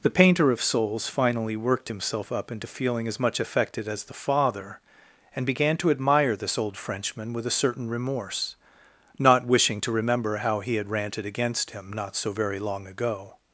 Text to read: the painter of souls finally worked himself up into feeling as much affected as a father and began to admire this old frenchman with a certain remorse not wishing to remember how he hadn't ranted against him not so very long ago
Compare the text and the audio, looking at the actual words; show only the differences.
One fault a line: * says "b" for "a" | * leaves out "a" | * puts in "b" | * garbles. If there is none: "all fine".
* says "the" for "a"
* says "had" for "hadn't"